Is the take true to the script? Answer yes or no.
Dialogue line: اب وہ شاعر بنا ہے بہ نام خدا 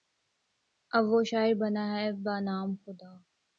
yes